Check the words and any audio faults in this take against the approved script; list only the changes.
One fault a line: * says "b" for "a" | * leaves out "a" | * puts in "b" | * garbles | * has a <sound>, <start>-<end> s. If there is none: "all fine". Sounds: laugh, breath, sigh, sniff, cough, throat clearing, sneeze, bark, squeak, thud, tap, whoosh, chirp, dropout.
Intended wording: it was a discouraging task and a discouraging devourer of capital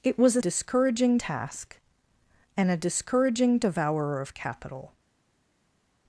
all fine